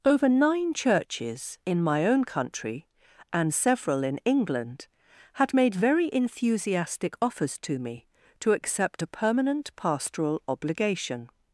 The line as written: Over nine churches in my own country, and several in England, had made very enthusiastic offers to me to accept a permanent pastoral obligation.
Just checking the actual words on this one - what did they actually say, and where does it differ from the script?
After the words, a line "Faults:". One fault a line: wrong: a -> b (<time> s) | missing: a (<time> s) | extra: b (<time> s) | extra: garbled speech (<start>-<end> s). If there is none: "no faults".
Over nine churches in my own country, and several in England, had made very enthusiastic offers to me to accept a permanent pastoral obligation.
Faults:
no faults